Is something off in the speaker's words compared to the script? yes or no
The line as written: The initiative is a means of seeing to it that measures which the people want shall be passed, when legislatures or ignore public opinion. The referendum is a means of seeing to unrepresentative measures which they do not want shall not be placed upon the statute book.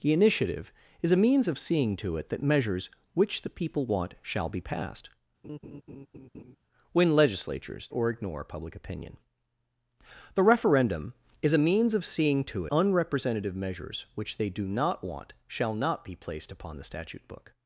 no